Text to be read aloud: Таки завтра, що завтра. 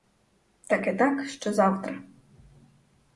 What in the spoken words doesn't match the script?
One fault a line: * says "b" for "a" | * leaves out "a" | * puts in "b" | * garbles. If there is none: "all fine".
* says "так" for "завтра"